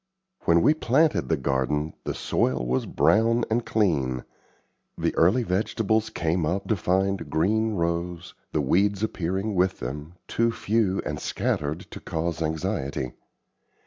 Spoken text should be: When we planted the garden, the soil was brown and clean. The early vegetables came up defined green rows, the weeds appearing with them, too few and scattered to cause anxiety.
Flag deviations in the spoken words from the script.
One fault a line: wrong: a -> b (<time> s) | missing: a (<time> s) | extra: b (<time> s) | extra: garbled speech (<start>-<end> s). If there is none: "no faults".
no faults